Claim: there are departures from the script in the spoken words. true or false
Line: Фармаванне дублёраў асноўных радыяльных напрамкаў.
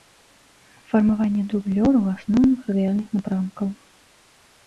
false